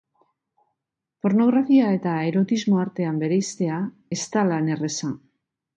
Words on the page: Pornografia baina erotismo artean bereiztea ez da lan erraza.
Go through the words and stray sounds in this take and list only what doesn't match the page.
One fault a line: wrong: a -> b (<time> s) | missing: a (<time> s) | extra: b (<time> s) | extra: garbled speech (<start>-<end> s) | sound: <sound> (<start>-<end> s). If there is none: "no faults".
wrong: baina -> eta (2.0 s)